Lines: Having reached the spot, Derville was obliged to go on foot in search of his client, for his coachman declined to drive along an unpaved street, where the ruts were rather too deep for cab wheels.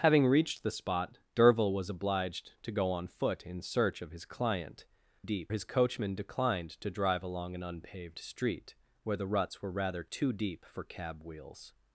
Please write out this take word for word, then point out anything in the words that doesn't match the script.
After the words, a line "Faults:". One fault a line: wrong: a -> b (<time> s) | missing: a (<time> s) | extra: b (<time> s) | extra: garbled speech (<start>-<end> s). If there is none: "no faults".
Having reached the spot, Derville was obliged to go on foot in search of his client, deep his coachman declined to drive along an unpaved street, where the ruts were rather too deep for cab wheels.
Faults:
wrong: for -> deep (5.2 s)